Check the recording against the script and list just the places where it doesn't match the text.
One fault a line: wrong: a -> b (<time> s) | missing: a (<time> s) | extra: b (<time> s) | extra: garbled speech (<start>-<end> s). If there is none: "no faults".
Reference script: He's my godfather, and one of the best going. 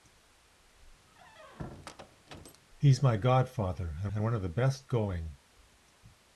extra: and (4.1 s)